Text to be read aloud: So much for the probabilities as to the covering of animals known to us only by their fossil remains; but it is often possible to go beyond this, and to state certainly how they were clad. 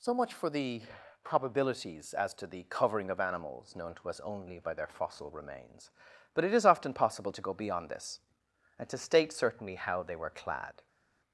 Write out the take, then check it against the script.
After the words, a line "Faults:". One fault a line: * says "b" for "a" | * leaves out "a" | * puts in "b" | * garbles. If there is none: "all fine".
So much for the probabilities as to the covering of animals known to us only by their fossil remains; but it is often possible to go beyond this, and to state certainly how they were clad.
Faults:
all fine